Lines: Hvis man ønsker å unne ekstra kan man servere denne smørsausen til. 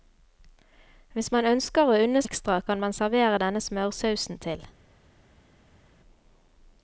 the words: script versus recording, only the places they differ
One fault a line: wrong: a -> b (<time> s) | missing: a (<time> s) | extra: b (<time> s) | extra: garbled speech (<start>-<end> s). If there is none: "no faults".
no faults